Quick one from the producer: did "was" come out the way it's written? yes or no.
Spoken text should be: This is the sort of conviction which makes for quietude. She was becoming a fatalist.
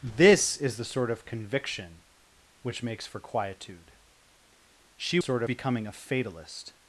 no